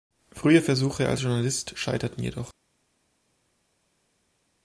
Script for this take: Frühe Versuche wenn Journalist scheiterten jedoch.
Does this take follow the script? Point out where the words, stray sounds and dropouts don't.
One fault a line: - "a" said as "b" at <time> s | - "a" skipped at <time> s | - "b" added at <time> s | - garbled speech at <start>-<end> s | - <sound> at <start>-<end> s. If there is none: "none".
- "wenn" said as "als" at 1.1 s